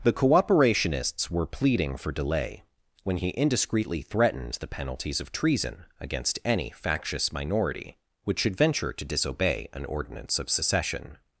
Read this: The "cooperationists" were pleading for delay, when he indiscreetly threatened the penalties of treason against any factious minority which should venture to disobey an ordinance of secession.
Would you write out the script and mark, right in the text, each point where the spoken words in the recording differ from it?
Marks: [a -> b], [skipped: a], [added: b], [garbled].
The "cooperationists" were pleading for delay, when he indiscreetly threatened the penalties of treason against any factious minority which should venture to disobey an ordinance of secession.